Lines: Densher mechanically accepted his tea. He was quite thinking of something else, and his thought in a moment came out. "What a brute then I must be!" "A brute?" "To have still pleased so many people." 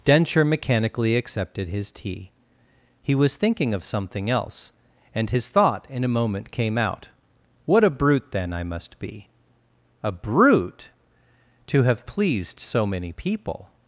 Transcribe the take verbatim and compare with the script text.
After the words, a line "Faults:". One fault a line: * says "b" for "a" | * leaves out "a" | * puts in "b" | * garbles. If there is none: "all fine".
Densher mechanically accepted his tea. He was thinking of something else, and his thought in a moment came out. "What a brute then I must be!" "A brute?" "To have pleased so many people."
Faults:
* leaves out "quite"
* leaves out "still"